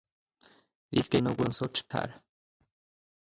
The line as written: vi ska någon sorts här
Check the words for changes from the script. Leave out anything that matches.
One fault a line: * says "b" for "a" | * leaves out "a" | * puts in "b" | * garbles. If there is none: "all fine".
all fine